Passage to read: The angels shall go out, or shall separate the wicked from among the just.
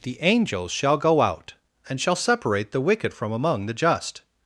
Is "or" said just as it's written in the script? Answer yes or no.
no